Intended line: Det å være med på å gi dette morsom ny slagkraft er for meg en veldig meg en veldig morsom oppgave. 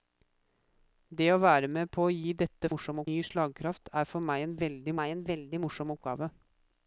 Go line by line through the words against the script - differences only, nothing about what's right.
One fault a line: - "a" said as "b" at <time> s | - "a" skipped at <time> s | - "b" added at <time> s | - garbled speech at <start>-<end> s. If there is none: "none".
none